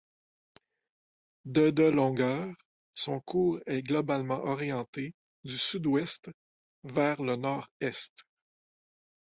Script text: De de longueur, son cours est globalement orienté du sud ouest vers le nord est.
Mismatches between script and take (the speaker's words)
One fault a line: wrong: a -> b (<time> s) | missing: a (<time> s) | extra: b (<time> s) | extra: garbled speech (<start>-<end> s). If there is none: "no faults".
no faults